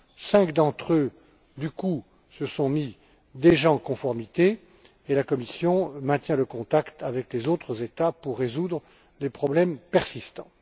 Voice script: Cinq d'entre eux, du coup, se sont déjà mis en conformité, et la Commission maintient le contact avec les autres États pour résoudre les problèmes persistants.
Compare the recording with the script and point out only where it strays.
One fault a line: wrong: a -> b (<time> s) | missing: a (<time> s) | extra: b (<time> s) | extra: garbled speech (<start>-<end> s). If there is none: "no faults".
no faults